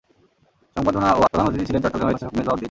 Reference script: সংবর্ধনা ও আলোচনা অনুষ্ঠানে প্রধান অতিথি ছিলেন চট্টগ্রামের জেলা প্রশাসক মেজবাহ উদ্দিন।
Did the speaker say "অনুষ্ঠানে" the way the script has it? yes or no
no